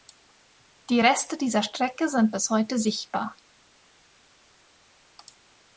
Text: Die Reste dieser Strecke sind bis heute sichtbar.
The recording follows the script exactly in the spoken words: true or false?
true